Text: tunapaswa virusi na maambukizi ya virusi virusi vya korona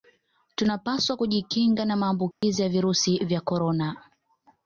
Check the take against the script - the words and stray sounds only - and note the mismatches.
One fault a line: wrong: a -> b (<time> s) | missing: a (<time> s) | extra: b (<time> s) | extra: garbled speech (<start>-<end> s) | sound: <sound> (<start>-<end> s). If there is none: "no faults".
wrong: virusi -> kujikinga (1.1 s)
sound: dropout (2.3-2.4 s)
missing: virusi (3.2 s)